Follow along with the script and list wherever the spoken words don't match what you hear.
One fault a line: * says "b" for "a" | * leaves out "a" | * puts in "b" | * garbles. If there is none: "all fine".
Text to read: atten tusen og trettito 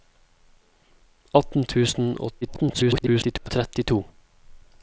* garbles